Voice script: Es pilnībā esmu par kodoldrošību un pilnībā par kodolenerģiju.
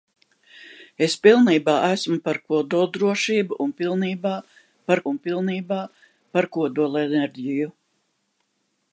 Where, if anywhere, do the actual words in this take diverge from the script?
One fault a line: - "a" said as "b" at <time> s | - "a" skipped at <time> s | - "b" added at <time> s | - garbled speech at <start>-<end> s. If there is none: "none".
- "un pilnībā par" added at 5.1 s